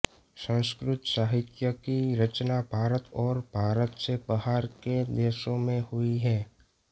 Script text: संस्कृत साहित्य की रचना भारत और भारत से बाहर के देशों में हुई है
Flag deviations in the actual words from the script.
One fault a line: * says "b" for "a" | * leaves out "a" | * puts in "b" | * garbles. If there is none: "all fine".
all fine